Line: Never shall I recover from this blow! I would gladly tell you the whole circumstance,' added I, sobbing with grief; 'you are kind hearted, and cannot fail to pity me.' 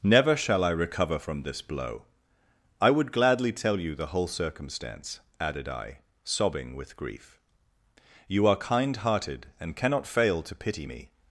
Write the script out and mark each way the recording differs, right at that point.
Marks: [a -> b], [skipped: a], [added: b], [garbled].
Never shall I recover from this blow! I would gladly tell you the whole circumstance,' added I, sobbing with grief; 'you are kind hearted, and cannot fail to pity me.'